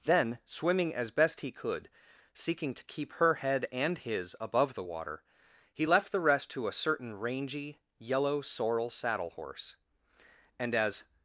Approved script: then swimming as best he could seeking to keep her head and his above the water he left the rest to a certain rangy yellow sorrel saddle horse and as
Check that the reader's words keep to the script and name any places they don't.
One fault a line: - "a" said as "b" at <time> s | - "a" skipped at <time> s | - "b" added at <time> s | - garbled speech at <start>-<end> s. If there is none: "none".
none